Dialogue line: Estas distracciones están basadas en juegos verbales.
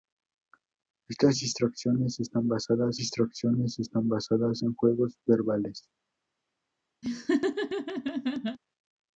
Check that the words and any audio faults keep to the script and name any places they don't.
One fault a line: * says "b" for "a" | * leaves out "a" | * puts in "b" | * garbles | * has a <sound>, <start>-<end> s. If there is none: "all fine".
* puts in "distracciones están basadas"
* has a laugh, 7.0-8.6 s